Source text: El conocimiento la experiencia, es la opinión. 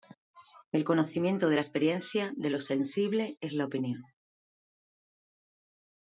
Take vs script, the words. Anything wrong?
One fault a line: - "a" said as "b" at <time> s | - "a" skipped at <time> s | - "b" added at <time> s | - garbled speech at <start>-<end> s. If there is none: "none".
- "de" added at 1.5 s
- "de lo sensible" added at 2.4 s